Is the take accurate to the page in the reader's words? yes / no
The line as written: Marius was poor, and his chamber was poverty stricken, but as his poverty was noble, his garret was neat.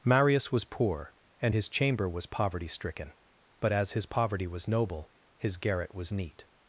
yes